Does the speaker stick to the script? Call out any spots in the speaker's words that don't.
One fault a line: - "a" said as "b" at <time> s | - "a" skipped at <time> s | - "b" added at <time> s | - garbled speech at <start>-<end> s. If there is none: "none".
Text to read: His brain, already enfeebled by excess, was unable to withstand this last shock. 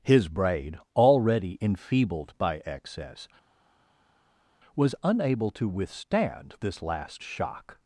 - "brain" said as "braid" at 0.3 s